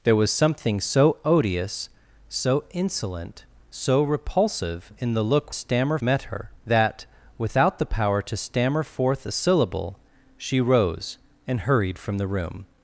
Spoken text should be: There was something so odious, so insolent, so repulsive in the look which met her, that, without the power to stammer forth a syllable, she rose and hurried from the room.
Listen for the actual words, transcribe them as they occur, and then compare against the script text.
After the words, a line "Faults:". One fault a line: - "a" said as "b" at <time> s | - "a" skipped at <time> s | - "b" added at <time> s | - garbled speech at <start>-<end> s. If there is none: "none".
There was something so odious, so insolent, so repulsive in the look stammer met her, that, without the power to stammer forth a syllable, she rose and hurried from the room.
Faults:
- "which" said as "stammer" at 5.5 s